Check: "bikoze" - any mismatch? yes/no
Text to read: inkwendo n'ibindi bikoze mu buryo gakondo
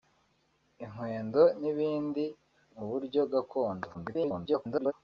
yes